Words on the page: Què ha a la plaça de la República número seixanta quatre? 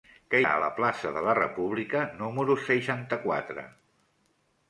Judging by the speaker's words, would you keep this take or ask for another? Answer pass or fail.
pass